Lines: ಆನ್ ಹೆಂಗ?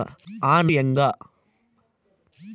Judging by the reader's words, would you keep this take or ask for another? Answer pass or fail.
pass